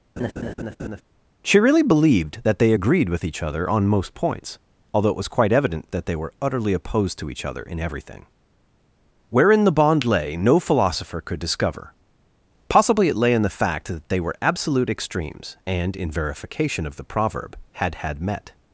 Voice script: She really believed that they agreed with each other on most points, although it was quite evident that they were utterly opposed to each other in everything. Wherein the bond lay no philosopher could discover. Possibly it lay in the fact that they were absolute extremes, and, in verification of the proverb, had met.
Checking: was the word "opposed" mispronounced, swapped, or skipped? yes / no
no